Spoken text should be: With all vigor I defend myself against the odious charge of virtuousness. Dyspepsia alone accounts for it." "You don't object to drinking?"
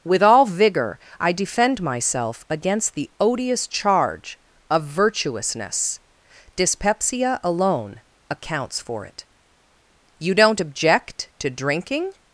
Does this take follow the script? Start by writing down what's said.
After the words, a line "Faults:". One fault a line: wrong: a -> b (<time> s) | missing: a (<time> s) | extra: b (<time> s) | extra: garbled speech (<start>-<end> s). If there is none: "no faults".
With all vigor I defend myself against the odious charge of virtuousness. Dyspepsia alone accounts for it." "You don't object to drinking?"
Faults:
no faults